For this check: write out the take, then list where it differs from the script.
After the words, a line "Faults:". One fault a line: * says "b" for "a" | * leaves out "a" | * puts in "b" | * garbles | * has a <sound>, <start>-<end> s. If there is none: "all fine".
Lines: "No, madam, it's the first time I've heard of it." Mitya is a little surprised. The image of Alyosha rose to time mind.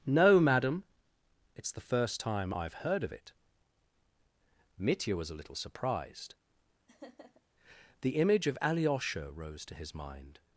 "No, madam, it's the first time I've heard of it." Mitya was a little surprised. The image of Alyosha rose to his mind.
Faults:
* says "was" for "is"
* has a laugh, 6.9-7.4 s
* says "his" for "time"